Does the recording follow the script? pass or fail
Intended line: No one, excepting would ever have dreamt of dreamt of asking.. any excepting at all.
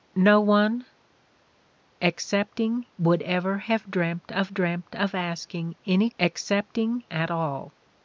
pass